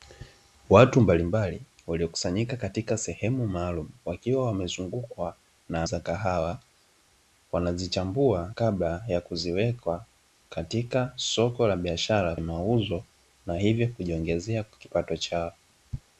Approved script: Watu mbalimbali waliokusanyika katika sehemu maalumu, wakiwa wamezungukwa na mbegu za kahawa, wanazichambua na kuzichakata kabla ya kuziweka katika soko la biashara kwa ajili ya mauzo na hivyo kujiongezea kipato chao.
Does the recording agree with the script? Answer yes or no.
no